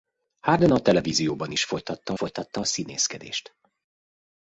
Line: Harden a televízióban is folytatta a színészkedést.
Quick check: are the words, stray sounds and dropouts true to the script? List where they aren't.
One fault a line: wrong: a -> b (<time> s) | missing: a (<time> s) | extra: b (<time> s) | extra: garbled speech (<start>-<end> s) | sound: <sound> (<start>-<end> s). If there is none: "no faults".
extra: folytatta (2.1 s)